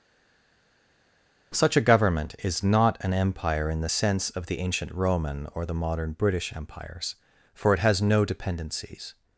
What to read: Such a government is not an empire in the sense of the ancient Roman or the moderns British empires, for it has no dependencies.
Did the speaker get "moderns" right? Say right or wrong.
wrong